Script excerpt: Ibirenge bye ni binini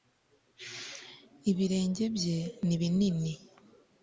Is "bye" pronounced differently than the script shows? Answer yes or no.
no